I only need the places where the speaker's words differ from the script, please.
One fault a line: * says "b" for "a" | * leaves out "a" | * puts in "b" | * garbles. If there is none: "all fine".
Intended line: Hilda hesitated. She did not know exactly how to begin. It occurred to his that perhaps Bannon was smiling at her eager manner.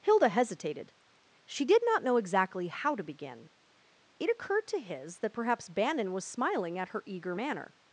all fine